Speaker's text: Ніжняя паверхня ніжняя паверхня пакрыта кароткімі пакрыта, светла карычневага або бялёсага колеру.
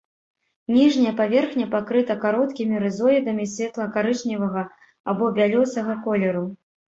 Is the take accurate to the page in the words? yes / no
no